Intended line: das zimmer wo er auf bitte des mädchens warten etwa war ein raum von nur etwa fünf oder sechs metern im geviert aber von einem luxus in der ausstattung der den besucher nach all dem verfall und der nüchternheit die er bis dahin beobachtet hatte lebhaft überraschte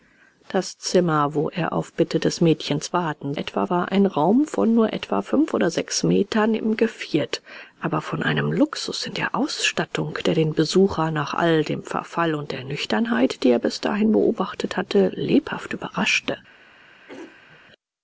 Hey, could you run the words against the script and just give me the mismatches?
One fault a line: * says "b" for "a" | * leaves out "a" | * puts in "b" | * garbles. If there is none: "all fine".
all fine